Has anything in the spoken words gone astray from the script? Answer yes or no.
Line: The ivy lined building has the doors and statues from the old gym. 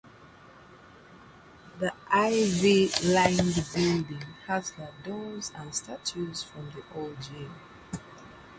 no